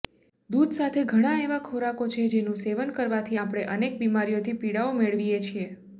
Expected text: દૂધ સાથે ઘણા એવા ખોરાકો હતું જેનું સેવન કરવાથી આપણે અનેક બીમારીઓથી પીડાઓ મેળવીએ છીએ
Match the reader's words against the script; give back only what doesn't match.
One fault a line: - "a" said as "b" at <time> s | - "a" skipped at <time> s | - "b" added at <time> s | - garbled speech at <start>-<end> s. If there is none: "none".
- "હતું" said as "છે" at 2.1 s